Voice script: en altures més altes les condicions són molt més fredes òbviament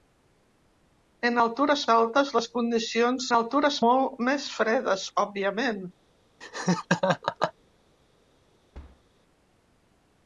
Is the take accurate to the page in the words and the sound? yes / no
no